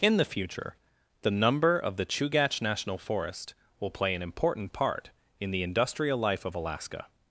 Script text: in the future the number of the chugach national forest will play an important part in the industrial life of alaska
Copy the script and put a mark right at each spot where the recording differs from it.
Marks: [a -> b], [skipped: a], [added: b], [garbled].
in the future the number of the chugach national forest will play an important part in the industrial life of alaska